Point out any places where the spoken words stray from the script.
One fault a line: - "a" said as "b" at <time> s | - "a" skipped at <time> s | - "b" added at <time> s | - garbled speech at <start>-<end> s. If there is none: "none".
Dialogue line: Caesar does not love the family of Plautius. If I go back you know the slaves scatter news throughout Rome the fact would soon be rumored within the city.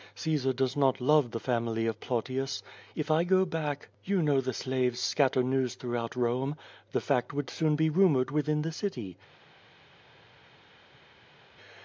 none